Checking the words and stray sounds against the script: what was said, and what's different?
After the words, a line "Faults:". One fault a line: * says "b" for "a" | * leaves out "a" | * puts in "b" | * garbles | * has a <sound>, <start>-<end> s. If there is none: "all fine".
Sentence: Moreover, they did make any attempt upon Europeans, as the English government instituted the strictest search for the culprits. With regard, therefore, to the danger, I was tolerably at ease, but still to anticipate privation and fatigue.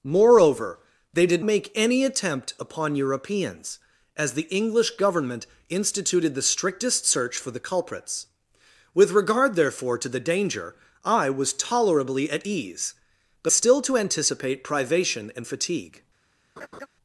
Moreover, they did make any attempt upon Europeans, as the English government instituted the strictest search for the culprits. With regard, therefore, to the danger, I was tolerably at ease, but still to anticipate privation and fatigue.
Faults:
* has a laugh, 16.6-16.9 s